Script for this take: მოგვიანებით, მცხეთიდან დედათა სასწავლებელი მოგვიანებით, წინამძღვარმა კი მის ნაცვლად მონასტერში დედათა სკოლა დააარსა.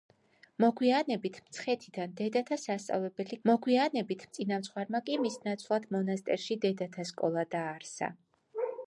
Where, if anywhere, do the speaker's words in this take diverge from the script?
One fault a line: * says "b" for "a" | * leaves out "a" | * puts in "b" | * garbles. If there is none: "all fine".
all fine